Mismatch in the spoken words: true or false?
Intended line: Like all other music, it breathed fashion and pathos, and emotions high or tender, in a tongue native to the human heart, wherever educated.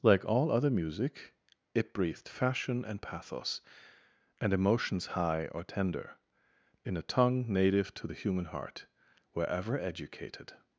false